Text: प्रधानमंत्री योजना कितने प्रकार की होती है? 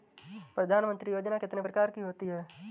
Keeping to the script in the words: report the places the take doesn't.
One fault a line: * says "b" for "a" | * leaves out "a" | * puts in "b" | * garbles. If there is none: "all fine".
all fine